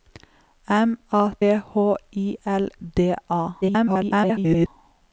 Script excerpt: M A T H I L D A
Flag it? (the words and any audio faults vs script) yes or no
yes